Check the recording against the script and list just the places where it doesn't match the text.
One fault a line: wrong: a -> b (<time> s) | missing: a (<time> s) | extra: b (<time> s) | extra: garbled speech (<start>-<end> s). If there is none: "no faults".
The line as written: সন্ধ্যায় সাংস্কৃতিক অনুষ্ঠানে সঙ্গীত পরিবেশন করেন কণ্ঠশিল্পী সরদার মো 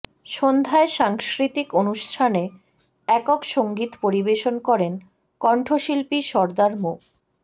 extra: একক (3.1 s)